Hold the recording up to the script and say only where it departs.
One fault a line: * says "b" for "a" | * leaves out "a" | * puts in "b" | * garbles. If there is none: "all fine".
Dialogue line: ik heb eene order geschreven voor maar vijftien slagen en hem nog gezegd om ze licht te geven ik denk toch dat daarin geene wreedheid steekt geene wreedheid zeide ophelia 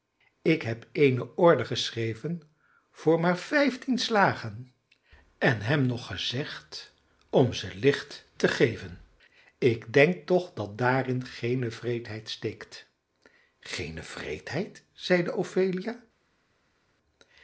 all fine